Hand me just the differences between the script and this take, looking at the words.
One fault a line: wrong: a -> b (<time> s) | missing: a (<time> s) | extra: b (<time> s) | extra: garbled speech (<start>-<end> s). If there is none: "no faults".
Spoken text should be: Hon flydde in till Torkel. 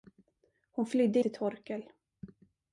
missing: in (1.2 s)